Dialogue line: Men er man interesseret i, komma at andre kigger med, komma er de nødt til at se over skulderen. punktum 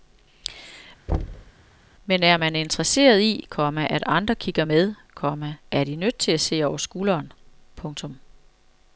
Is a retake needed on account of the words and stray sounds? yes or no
yes